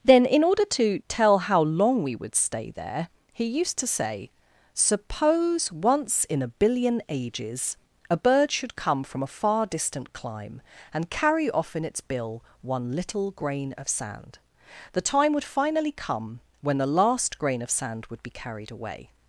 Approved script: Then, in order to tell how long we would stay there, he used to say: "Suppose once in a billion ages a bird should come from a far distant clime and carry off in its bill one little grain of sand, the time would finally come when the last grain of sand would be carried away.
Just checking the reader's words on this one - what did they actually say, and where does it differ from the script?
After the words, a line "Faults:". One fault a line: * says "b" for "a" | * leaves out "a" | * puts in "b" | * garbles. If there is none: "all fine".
Then, in order to tell how long we would stay there, he used to say: "Suppose once in a billion ages a bird should come from a far distant clime and carry off in its bill one little grain of sand, the time would finally come when the last grain of sand would be carried away.
Faults:
all fine